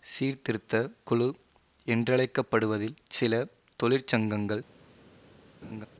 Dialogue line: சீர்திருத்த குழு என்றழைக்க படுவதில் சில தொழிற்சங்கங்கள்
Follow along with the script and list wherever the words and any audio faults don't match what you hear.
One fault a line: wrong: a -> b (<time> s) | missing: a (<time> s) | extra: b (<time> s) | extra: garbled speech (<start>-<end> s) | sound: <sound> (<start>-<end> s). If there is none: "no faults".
sound: laugh (5.6-5.9 s)